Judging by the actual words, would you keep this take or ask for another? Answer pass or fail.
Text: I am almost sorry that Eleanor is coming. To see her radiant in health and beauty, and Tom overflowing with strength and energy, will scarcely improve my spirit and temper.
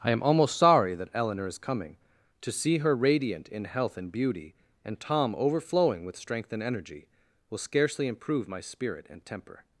pass